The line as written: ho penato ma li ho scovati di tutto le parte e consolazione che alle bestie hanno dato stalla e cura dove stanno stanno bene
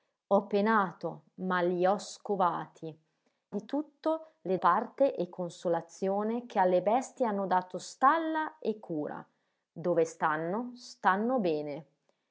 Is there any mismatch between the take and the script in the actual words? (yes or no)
no